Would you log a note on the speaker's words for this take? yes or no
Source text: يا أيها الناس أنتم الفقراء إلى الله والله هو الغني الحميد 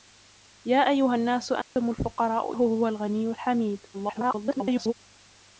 yes